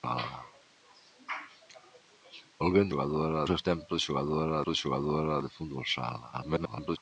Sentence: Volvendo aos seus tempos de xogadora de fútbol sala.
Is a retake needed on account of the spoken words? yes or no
yes